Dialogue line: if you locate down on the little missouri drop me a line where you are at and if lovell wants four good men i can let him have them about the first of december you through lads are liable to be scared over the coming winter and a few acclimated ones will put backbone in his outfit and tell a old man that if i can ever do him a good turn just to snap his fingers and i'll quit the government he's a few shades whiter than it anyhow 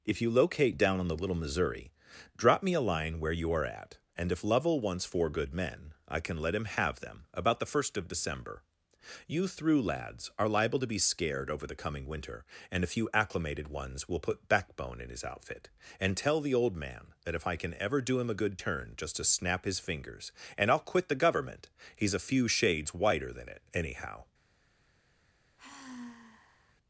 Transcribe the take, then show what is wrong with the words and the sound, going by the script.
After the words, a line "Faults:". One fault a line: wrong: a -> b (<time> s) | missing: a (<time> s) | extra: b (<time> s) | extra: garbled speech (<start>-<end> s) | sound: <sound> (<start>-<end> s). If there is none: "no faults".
if you locate down on the little missouri drop me a line where you are at and if lovell wants four good men i can let him have them about the first of december you through lads are liable to be scared over the coming winter and a few acclimated ones will put backbone in his outfit and tell the old man that if i can ever do him a good turn just to snap his fingers and i'll quit the government he's a few shades whiter than it anyhow
Faults:
wrong: a -> the (16.4 s)
sound: sigh (25.6-26.8 s)